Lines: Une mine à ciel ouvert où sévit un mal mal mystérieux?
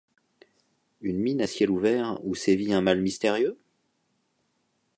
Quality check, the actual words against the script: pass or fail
fail